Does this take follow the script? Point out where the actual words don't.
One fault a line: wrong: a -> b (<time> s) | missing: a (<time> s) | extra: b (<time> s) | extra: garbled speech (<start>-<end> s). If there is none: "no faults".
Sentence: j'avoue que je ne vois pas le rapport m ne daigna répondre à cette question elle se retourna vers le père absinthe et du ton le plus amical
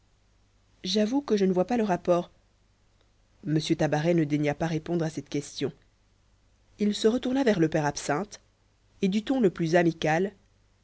extra: tabaret (3.6 s)
extra: pas (4.5 s)
wrong: elle -> il (6.8 s)